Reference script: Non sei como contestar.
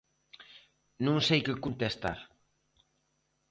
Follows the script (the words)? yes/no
no